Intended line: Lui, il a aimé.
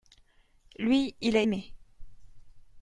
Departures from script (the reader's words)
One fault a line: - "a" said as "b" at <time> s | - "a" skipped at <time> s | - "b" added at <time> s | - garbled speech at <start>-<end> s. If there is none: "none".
none